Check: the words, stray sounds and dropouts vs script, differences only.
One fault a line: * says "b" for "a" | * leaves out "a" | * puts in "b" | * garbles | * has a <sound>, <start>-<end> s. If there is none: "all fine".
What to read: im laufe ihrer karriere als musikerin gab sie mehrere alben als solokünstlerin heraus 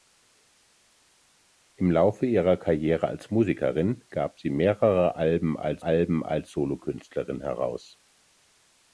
* puts in "alben als"